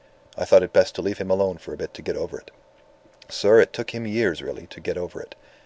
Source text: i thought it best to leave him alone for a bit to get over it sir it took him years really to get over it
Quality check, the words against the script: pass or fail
pass